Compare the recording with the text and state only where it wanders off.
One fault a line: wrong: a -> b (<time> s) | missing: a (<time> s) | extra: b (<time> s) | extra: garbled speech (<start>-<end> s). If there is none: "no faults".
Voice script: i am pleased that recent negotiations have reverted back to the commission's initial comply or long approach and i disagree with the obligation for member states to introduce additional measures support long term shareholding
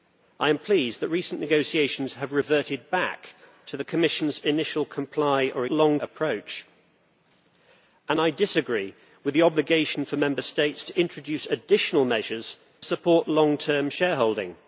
no faults